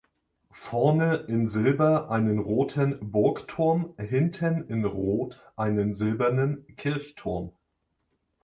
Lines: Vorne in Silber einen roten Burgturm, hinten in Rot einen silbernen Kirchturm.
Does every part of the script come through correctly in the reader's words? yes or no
yes